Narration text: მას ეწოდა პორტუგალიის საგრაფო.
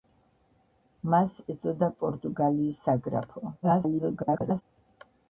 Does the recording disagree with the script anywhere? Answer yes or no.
yes